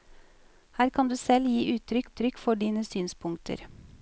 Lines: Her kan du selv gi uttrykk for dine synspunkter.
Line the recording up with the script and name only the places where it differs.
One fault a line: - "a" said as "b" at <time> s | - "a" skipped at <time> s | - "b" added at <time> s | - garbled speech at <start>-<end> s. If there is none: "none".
- "uttrykk" added at 2.0 s